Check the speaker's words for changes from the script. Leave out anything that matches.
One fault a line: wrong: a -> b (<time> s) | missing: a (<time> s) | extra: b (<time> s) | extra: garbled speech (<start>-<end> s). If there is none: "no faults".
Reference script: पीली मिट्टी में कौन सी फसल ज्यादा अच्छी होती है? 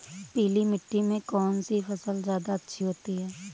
no faults